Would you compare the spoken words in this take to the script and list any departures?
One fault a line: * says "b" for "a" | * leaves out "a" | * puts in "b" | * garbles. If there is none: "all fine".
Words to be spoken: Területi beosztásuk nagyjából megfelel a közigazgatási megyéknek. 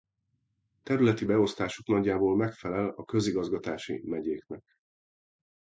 all fine